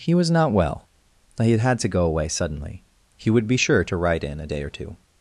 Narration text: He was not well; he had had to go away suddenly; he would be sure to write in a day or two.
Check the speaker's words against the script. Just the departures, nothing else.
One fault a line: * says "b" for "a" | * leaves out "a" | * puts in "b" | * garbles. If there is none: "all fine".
all fine